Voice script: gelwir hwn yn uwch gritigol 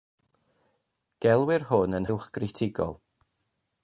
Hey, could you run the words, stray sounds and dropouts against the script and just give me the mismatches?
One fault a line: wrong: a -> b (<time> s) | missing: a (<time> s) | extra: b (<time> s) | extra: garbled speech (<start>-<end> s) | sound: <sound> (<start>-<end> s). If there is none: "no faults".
no faults